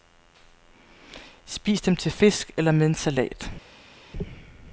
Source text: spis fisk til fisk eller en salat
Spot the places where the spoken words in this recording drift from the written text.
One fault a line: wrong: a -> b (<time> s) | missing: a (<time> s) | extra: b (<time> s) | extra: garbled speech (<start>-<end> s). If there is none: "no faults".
wrong: fisk -> dem (1.8 s)
extra: med (2.7 s)